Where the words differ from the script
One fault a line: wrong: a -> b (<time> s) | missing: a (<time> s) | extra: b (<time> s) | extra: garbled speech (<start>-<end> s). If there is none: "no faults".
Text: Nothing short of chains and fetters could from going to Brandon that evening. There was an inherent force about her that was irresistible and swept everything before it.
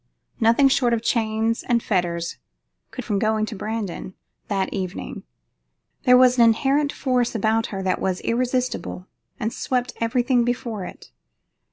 no faults